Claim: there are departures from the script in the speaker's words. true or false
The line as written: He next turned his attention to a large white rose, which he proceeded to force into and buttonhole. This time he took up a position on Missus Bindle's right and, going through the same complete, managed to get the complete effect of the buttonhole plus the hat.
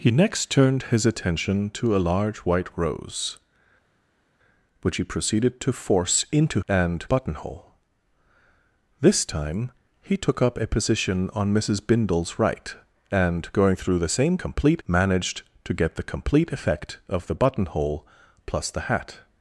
false